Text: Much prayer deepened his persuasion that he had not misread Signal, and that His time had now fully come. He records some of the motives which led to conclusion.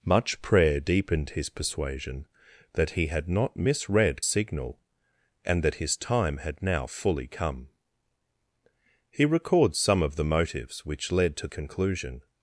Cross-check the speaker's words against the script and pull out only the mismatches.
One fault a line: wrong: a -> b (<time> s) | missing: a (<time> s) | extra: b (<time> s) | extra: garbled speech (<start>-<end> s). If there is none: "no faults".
no faults